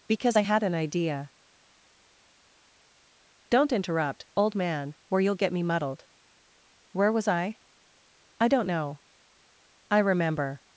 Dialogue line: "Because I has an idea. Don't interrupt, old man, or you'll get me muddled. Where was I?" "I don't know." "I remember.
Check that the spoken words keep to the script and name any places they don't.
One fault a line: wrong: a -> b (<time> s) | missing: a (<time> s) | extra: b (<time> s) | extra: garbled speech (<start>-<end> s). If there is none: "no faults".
wrong: has -> had (0.4 s)